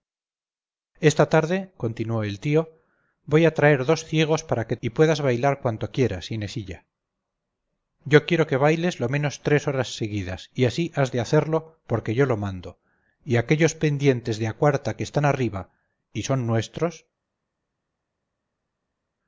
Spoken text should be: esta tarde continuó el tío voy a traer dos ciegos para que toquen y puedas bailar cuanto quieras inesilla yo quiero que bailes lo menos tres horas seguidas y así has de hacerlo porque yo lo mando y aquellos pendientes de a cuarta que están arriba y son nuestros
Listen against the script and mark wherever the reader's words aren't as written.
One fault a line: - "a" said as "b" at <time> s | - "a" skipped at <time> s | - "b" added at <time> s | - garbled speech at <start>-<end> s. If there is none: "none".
- "toquen" skipped at 4.8 s